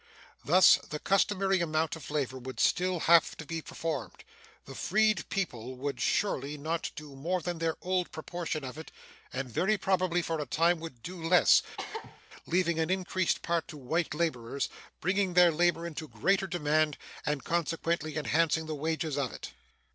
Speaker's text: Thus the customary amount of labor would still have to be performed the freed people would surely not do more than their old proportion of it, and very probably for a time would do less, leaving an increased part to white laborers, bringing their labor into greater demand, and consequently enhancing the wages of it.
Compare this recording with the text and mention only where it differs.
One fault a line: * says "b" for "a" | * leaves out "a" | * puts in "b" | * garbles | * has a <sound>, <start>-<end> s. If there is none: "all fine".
* has a cough, 11.8-12.2 s